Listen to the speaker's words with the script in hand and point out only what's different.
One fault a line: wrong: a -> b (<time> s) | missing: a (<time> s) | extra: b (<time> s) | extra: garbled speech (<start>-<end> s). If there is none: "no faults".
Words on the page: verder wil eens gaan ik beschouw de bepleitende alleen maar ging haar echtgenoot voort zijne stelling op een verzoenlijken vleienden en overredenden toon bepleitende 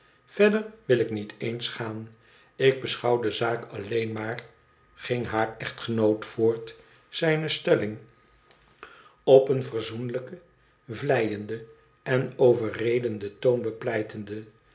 extra: ik niet (1.0 s)
wrong: bepleitende -> zaak (3.3 s)